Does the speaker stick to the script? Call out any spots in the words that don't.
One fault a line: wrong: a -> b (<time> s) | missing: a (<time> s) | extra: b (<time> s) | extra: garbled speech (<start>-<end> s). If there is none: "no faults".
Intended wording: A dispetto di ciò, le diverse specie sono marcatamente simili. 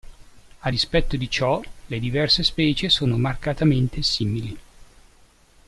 no faults